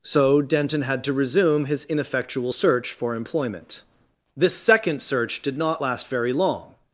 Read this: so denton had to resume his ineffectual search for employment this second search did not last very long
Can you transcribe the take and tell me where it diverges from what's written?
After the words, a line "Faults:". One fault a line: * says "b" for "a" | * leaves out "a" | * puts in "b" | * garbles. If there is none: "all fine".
so denton had to resume his ineffectual search for employment this second search did not last very long
Faults:
all fine